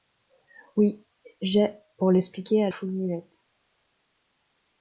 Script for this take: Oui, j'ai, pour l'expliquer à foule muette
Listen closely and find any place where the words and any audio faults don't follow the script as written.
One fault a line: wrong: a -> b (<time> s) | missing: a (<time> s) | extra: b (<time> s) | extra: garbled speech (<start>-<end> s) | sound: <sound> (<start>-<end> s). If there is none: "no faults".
no faults